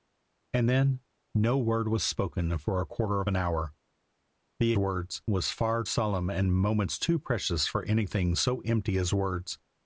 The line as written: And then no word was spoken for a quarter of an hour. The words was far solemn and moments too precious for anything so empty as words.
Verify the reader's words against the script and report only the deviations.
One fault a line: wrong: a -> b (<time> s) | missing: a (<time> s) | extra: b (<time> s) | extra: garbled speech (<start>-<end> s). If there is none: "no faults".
no faults